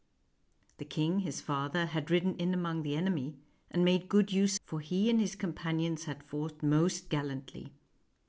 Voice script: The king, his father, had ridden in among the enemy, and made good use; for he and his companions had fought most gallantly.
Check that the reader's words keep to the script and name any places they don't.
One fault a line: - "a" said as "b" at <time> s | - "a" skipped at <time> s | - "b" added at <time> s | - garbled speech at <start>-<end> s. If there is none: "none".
none